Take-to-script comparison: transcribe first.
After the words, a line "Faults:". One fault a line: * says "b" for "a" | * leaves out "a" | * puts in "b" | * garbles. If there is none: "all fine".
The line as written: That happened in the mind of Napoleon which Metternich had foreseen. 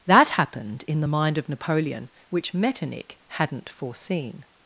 That happened in the mind of Napoleon which Metternich hadn't foreseen.
Faults:
* says "hadn't" for "had"